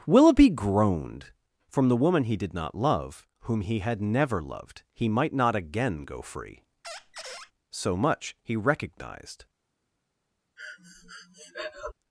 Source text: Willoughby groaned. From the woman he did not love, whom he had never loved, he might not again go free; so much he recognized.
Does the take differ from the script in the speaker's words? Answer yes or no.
no